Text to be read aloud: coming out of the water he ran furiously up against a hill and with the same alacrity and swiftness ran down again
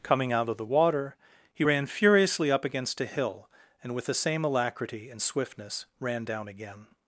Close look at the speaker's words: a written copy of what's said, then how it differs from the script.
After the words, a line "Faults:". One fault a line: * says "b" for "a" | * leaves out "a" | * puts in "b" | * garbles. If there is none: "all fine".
coming out of the water he ran furiously up against a hill and with the same alacrity and swiftness ran down again
Faults:
all fine